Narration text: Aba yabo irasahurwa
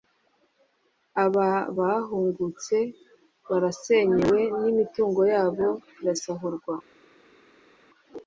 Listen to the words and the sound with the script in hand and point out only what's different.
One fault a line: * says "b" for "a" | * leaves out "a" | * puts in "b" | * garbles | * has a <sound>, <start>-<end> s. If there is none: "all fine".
* puts in "bahungutse barasenyewe n'imitungo"